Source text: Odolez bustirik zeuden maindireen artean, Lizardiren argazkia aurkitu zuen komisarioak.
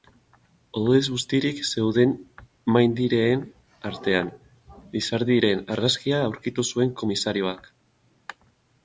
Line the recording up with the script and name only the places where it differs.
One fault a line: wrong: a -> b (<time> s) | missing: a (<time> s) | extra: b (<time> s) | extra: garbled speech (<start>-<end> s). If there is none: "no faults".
no faults